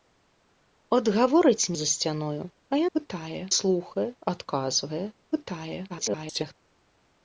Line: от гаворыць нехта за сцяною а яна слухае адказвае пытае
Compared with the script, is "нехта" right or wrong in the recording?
wrong